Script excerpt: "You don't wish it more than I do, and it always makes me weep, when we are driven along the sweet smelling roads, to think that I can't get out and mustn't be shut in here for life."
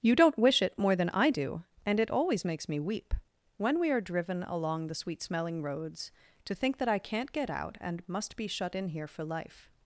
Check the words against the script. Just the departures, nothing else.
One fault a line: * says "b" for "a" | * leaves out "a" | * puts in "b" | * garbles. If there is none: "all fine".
* says "must" for "mustn't"